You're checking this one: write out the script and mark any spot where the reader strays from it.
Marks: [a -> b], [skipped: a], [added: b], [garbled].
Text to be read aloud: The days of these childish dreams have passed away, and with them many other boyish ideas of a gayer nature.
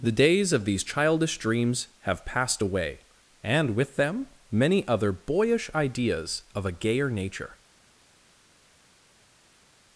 The days of these childish dreams have passed away, and with them many other boyish ideas of a gayer nature.